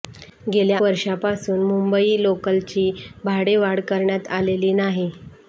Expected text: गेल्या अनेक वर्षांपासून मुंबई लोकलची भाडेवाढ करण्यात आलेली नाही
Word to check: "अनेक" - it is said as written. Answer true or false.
false